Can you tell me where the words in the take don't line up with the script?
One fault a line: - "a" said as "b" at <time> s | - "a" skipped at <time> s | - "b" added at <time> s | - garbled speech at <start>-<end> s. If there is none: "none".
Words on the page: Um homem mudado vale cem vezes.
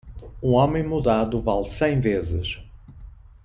none